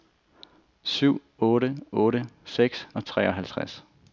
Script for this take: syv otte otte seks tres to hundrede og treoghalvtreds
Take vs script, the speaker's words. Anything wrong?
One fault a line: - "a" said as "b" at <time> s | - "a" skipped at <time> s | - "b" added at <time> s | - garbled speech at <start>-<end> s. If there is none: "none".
- "tres to hundrede" skipped at 2.9 s